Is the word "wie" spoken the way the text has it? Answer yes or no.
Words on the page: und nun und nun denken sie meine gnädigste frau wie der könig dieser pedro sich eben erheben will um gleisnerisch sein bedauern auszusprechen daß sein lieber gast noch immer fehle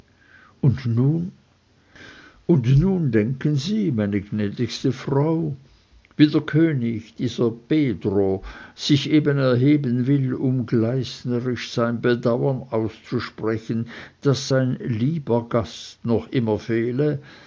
yes